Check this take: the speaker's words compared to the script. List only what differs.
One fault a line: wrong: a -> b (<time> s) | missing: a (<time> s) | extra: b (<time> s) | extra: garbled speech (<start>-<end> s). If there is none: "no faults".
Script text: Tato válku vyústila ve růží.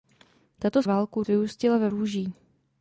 no faults